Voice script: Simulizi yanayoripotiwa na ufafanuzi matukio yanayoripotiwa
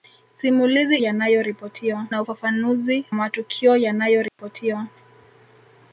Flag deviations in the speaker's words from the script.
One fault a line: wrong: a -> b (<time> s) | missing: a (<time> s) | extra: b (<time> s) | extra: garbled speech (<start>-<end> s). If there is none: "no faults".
no faults